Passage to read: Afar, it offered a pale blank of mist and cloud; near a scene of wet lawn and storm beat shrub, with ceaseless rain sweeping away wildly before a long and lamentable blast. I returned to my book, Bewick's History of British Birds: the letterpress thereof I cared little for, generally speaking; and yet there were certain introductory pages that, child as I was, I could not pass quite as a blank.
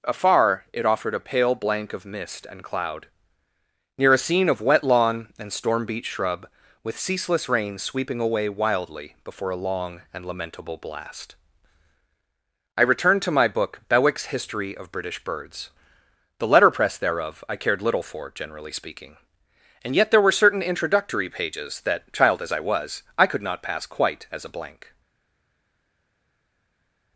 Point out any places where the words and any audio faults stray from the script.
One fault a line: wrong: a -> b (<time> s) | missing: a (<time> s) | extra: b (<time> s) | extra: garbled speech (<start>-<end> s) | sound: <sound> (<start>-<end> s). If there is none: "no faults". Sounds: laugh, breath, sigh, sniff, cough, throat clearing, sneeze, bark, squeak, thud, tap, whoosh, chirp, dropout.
no faults